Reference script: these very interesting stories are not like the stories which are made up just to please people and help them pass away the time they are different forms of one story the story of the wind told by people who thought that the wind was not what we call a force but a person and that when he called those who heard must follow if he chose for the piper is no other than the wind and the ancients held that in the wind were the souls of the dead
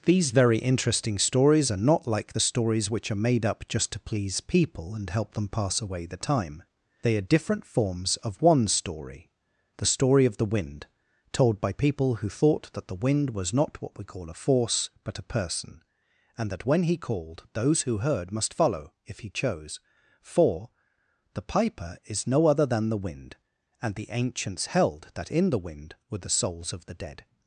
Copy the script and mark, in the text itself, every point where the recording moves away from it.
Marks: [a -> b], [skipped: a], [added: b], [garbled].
these very interesting stories are not like the stories which are made up just to please people and help them pass away the time they are different forms of one story the story of the wind told by people who thought that the wind was not what we call a force but a person and that when he called those who heard must follow if he chose for the piper is no other than the wind and the ancients held that in the wind were the souls of the dead